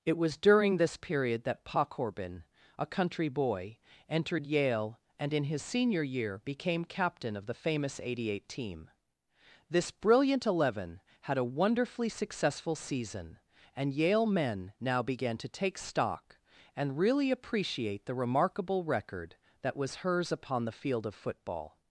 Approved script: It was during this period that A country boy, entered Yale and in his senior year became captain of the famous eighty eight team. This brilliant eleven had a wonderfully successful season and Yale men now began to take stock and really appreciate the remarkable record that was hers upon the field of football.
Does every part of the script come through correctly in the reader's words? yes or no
no